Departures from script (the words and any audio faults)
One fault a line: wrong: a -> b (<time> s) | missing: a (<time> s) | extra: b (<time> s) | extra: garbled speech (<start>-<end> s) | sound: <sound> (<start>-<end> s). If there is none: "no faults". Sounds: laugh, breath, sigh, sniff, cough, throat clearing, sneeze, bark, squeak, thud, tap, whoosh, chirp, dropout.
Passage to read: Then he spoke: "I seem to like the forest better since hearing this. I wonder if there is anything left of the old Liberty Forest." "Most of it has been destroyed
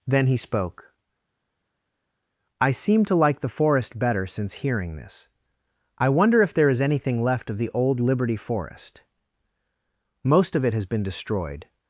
no faults